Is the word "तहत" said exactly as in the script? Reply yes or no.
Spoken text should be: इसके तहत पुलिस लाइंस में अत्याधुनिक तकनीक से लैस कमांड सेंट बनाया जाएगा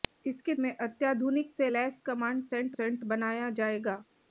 no